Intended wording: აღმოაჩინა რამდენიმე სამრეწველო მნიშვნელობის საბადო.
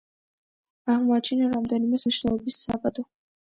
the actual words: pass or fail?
fail